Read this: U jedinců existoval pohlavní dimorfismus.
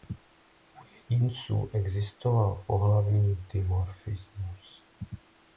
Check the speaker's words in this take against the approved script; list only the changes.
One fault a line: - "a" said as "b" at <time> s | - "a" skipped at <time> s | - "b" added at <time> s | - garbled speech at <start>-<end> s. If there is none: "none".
none